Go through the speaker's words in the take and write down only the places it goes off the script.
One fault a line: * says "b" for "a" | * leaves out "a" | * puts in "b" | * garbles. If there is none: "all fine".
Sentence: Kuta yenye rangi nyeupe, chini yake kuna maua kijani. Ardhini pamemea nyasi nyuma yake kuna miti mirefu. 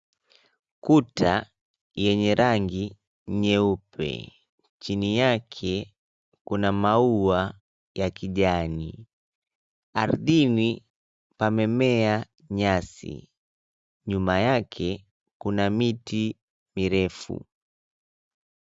* puts in "ya"